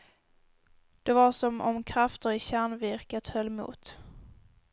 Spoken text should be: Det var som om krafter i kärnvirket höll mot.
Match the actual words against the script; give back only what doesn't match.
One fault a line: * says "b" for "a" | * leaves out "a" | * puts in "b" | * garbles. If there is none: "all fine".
all fine